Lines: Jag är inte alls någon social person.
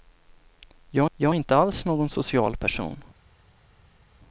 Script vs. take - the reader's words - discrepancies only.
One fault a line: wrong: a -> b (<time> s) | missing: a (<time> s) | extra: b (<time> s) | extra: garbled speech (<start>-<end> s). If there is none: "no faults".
extra: jag (1.2 s)